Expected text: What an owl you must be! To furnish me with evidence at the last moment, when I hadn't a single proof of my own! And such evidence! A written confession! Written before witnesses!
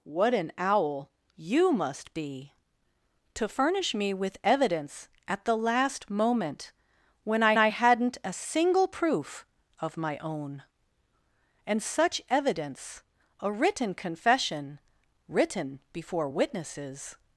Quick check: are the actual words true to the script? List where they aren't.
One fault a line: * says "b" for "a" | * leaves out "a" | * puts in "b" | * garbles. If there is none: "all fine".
* puts in "I"